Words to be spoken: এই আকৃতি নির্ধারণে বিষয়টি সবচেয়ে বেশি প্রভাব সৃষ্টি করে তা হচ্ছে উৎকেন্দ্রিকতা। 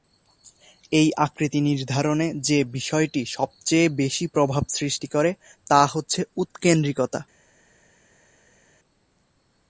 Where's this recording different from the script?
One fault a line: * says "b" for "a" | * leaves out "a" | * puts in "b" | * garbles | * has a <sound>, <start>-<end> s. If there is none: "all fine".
* puts in "যে"